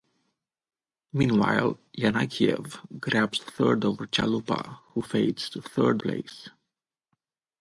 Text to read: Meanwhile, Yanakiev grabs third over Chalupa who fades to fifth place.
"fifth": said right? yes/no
no